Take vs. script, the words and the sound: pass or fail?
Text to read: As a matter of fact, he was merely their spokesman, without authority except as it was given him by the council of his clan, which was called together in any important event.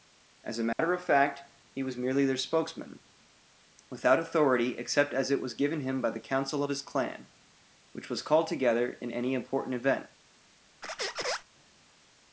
fail